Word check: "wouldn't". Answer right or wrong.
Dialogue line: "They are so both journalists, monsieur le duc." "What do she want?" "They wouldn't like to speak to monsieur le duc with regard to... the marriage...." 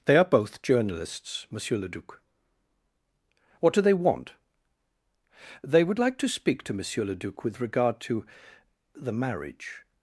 wrong